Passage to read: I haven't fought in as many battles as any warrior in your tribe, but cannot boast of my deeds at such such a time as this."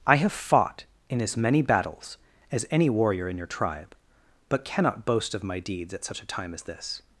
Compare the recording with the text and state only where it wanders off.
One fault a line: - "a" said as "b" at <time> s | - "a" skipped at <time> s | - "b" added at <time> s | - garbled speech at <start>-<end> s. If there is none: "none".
- "haven't" said as "have" at 0.1 s
- "such" skipped at 6.2 s